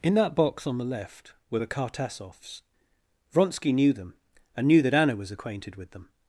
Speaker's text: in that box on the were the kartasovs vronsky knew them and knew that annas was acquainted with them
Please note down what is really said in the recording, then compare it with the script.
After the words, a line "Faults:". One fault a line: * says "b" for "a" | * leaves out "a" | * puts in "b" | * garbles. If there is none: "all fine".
in that box on the left were the kartasovs vronsky knew them and knew that anna was acquainted with them
Faults:
* puts in "left"
* says "anna" for "annas"